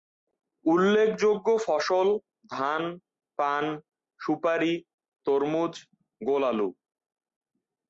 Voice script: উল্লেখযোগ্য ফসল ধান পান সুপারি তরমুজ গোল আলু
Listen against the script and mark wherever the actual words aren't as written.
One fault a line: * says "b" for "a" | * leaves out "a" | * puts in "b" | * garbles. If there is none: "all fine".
all fine